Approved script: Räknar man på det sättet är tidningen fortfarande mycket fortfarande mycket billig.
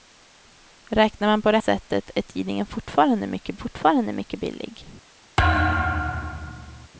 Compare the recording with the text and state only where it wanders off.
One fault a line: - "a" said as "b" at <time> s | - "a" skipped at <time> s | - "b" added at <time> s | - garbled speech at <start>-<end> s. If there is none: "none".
none